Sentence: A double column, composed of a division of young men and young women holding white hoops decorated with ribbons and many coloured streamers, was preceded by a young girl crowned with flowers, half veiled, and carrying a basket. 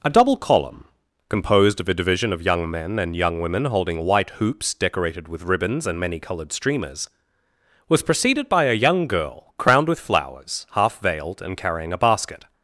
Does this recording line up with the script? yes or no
yes